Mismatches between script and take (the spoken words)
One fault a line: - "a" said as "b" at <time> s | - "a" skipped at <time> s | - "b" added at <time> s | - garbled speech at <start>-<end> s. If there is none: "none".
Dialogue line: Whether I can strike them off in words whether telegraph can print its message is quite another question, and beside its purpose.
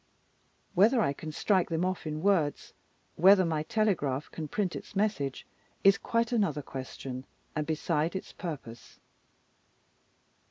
- "my" added at 3.4 s